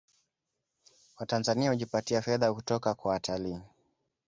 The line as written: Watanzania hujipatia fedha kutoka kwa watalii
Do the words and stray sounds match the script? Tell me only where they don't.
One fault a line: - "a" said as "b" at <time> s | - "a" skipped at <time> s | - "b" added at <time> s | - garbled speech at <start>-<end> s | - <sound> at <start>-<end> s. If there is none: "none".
none